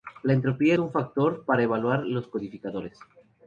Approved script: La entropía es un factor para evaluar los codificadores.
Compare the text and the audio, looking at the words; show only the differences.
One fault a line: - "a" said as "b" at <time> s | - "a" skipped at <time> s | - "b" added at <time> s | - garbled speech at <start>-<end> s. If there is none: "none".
- "es" skipped at 0.7 s